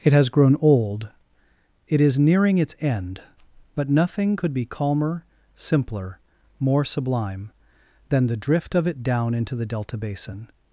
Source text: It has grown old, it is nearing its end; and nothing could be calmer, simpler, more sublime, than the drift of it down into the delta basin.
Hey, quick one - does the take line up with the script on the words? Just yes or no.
no